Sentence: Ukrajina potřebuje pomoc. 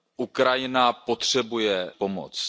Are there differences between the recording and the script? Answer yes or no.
no